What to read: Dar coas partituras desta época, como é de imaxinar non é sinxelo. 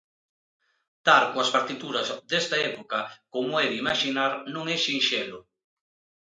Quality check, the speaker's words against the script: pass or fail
pass